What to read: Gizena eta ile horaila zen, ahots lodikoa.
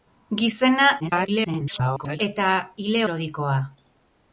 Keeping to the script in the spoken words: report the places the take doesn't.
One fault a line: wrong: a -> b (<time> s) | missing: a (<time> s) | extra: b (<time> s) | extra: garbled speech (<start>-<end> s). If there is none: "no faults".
extra: garbled speech (1.0-2.2 s)
missing: horaila zen ahots (3.0 s)